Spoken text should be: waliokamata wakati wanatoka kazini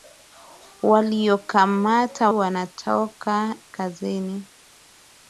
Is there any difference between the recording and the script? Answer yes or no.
yes